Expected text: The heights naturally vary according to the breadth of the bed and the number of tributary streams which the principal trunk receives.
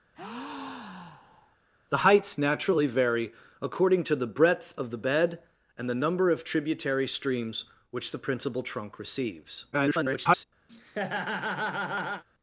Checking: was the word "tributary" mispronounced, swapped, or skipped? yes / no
no